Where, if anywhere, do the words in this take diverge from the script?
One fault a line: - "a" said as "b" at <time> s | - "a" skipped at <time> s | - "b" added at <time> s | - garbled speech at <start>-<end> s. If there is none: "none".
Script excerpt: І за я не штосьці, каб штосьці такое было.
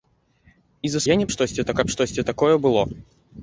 none